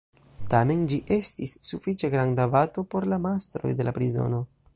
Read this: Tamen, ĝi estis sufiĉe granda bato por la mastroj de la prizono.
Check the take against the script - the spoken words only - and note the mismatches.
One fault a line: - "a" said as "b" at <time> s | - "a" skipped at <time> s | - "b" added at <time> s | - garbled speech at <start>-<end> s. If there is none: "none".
none